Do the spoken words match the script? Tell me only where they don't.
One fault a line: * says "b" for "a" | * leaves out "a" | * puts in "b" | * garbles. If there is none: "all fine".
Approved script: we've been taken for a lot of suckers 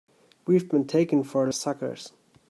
* leaves out "lot of"